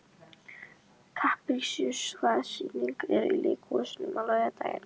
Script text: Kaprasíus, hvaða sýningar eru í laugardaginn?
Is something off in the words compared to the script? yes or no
yes